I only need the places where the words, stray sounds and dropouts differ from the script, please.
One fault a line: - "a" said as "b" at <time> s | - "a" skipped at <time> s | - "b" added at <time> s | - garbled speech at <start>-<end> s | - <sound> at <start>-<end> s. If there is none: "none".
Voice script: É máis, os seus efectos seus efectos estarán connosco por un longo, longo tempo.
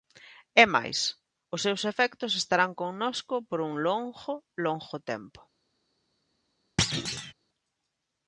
- "seus efectos" skipped at 2.3 s
- thud at 6.8-7.3 s